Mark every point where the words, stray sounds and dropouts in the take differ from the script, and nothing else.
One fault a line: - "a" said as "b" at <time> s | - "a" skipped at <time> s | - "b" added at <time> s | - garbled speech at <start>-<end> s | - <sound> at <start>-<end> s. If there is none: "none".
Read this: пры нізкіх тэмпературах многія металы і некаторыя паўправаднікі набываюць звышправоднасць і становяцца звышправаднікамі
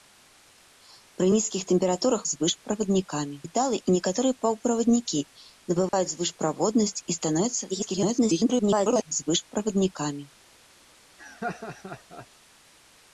- "многія" said as "звышправаднікамі" at 2.3 s
- dropout at 5.9-5.9 s
- garbled speech at 7.7-9.1 s
- laugh at 11.2-12.3 s